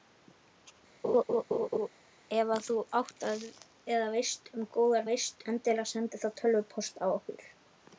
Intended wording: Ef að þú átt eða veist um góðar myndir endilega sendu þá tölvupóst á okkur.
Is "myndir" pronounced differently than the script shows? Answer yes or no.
yes